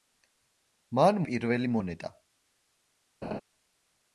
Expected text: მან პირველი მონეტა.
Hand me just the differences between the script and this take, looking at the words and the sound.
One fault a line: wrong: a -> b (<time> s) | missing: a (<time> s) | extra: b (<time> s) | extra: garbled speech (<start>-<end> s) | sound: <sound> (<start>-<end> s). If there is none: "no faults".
sound: laugh (3.2-3.4 s)